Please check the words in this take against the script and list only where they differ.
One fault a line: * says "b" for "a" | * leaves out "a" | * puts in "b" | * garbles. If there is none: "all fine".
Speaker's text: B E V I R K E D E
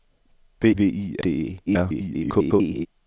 * leaves out "E"
* leaves out "R K E"
* garbles